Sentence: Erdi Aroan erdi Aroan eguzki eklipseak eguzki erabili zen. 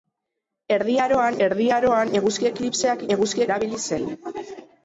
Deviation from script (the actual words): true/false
false